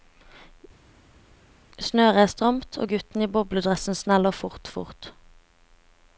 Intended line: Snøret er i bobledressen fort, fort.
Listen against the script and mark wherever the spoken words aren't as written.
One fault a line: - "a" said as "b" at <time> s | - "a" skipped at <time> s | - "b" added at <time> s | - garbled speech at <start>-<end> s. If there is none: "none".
- "stramt og gutten" added at 2.3 s
- "sneller" added at 4.0 s